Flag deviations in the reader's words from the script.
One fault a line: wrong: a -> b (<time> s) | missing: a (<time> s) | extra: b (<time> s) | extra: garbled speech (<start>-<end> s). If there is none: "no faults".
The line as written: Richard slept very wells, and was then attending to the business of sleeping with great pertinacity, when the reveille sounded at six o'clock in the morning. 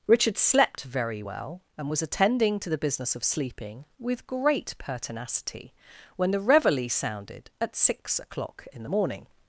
wrong: wells -> well (1.2 s)
missing: then (2.0 s)